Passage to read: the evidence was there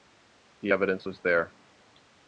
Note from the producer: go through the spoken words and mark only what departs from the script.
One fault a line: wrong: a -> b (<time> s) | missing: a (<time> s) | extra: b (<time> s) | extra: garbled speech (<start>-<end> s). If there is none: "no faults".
no faults